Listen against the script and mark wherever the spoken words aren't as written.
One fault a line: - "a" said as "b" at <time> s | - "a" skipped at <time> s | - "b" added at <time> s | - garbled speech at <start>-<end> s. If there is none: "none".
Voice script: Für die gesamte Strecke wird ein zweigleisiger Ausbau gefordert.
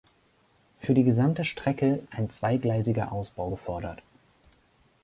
- "wird" skipped at 2.0 s